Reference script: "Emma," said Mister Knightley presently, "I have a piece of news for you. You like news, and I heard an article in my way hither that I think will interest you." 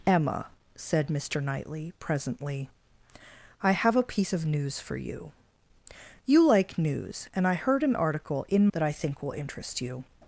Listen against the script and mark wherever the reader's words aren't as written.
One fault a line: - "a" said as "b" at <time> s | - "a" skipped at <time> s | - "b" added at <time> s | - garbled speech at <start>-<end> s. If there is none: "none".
- "my way hither" skipped at 8.7 s